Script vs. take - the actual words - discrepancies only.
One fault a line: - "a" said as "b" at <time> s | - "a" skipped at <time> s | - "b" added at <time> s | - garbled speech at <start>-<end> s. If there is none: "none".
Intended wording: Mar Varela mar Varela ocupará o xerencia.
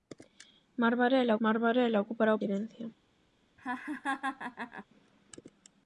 none